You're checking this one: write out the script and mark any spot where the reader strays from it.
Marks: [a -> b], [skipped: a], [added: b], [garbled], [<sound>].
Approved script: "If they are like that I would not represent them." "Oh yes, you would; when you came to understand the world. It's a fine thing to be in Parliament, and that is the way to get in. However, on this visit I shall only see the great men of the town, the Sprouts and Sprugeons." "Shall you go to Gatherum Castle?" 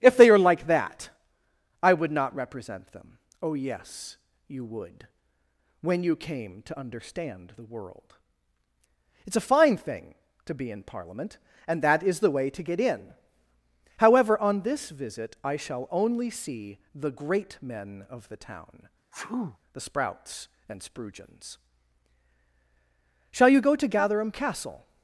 "If they are like that I would not represent them." "Oh yes, you would; when you came to understand the world. It's a fine thing to be in Parliament, and that is the way to get in. However, on this visit I shall only see the great men of the town, [sneeze] the Sprouts and Sprugeons." "Shall you go to Gatherum Castle?"